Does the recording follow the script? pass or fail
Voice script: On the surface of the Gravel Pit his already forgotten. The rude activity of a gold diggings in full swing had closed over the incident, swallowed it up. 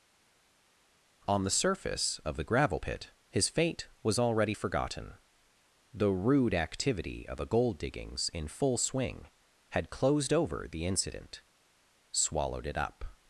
fail